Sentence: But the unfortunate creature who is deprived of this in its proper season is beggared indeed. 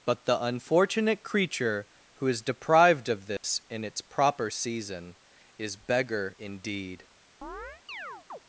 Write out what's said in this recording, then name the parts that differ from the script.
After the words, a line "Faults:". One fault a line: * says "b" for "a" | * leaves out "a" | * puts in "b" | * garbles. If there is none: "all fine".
But the unfortunate creature who is deprived of this in its proper season is beggar indeed.
Faults:
* says "beggar" for "beggared"